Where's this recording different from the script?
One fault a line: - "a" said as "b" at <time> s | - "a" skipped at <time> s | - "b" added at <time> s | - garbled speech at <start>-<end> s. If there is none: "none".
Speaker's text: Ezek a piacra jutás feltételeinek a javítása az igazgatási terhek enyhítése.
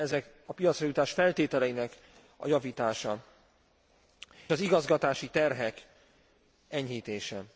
none